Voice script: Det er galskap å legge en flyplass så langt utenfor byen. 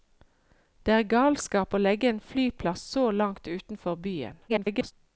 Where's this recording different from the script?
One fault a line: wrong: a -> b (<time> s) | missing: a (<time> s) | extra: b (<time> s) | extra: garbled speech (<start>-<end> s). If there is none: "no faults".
extra: garbled speech (4.5-4.9 s)